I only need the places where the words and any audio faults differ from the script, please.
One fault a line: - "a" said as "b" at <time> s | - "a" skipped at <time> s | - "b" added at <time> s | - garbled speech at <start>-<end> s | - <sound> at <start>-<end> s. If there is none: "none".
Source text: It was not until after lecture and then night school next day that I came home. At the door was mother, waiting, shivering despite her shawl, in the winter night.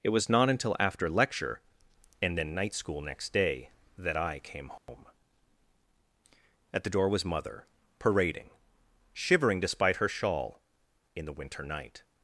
- dropout at 4.8-4.9 s
- "waiting" said as "parading" at 8.0 s